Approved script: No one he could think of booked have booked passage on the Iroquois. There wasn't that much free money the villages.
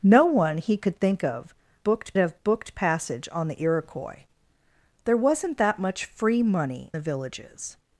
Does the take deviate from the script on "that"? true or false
false